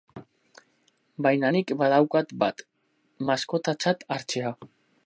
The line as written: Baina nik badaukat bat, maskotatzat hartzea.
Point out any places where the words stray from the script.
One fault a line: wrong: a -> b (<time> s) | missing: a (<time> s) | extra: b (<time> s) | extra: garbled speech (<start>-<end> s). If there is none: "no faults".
no faults